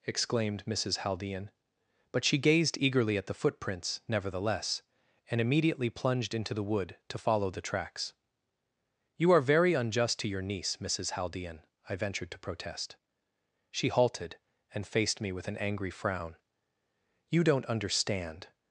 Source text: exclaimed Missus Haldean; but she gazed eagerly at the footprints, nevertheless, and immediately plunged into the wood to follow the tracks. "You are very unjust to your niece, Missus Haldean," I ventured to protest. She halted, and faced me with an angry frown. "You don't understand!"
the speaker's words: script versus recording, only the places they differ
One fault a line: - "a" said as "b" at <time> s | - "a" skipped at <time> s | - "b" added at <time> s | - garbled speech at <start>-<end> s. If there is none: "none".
none